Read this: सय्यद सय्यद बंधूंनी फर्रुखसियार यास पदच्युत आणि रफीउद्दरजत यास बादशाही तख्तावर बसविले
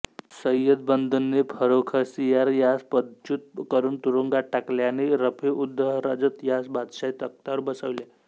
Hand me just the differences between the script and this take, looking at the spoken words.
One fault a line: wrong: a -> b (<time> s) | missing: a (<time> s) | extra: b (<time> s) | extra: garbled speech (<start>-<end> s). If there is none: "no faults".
missing: सय्यद (0.8 s)
extra: करून तुरुंगात टाकले (3.7 s)